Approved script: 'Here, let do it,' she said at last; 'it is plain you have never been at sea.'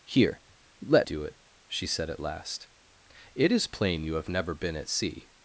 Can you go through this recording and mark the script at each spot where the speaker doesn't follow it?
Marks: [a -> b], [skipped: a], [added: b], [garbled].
'Here, let do it,' she said at last; 'it is plain you have never been at sea.'